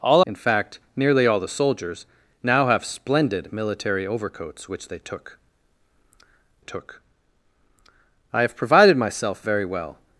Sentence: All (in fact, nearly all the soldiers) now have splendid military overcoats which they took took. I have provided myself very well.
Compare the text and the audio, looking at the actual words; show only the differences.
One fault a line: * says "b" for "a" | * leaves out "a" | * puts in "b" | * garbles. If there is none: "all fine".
all fine